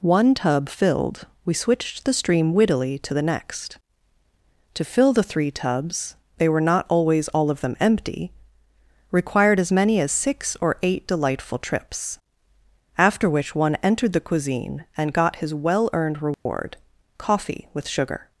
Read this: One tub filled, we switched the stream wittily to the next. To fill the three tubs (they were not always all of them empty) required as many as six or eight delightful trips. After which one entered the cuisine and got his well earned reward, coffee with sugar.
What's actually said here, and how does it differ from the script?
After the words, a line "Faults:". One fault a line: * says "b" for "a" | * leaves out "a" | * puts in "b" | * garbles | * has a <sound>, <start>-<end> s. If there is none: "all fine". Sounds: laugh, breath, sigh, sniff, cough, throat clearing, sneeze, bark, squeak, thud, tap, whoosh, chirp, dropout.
One tub filled, we switched the stream wittily to the next. To fill the three tubs (they were not always all of them empty) required as many as six or eight delightful trips. After which one entered the cuisine and got his well earned reward, coffee with sugar.
Faults:
* has a dropout, 16.3-16.5 s